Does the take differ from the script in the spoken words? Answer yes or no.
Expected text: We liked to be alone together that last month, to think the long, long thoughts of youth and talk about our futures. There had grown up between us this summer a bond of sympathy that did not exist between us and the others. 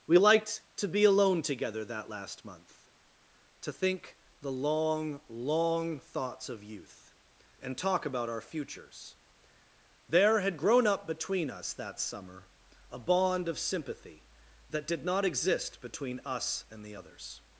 yes